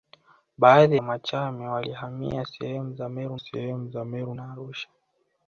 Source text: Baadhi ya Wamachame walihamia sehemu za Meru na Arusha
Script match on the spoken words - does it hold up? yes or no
no